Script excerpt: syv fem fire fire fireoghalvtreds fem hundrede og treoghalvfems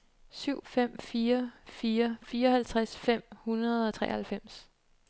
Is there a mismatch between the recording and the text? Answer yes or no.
no